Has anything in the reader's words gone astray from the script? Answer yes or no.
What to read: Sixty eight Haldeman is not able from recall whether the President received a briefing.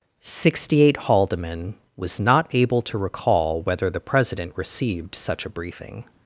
yes